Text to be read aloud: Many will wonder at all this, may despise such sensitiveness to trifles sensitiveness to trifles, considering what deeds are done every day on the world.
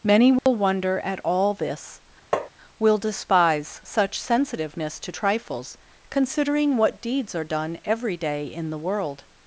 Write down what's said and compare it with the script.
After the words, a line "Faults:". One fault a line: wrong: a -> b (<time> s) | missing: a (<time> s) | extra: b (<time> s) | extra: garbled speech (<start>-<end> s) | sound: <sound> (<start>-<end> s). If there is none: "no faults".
Many will wonder at all this, will despise such sensitiveness to trifles, considering what deeds are done every day in the world.
Faults:
sound: dropout (0.4-0.5 s)
sound: tap (2.3-2.5 s)
wrong: may -> will (2.8 s)
missing: sensitiveness to trifles (5.8 s)
wrong: on -> in (8.5 s)